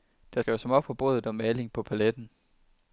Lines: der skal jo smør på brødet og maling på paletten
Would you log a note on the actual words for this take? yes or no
no